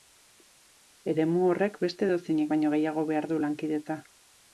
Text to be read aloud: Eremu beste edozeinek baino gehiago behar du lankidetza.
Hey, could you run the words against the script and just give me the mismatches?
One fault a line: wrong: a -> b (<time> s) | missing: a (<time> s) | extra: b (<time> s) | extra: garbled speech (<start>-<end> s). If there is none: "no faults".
extra: horrek (1.5 s)